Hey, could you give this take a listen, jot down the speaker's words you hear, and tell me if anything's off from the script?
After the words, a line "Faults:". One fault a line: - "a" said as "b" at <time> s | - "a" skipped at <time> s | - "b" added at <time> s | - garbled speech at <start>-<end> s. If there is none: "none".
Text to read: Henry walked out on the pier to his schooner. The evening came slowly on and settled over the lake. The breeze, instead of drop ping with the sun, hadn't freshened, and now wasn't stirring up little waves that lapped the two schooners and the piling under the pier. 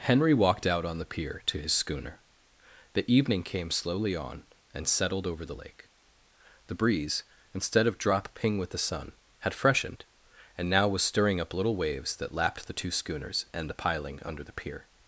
Henry walked out on the pier to his schooner. The evening came slowly on and settled over the lake. The breeze, instead of drop ping with the sun, had freshened, and now was stirring up little waves that lapped the two schooners and the piling under the pier.
Faults:
- "hadn't" said as "had" at 9.4 s
- "wasn't" said as "was" at 10.9 s